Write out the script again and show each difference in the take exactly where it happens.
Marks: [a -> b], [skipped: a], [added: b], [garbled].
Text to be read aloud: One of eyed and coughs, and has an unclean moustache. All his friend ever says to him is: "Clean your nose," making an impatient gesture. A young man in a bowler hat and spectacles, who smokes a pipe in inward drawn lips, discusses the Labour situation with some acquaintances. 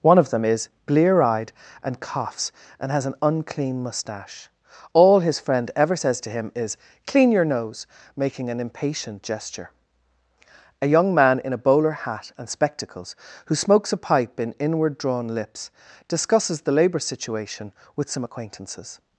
One of [added: them is blear] eyed and coughs, and has an unclean moustache. All his friend ever says to him is: "Clean your nose," making an impatient gesture. A young man in a bowler hat and spectacles, who smokes a pipe in inward drawn lips, discusses the Labour situation with some acquaintances.